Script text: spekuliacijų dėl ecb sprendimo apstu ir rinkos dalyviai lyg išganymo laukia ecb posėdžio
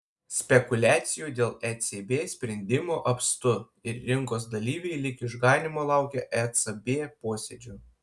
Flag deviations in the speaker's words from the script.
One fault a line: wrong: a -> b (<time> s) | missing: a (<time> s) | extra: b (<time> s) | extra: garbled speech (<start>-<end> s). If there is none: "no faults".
no faults